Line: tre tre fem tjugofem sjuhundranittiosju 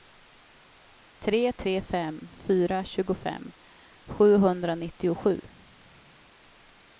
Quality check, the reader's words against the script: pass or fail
fail